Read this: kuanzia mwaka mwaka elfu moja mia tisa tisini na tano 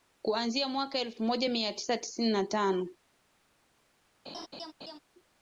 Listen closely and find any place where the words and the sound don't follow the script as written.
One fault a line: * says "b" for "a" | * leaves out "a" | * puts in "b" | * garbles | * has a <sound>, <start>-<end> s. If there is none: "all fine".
* leaves out "mwaka"
* has a laugh, 4.2-5.0 s